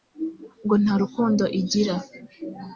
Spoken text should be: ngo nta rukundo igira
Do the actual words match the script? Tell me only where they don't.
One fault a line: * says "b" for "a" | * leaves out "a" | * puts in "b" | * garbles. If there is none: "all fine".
all fine